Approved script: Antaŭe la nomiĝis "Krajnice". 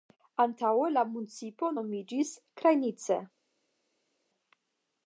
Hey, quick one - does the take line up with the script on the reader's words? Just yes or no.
no